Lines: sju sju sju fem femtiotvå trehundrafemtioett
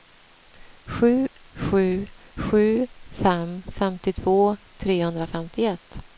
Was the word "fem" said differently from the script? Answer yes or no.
no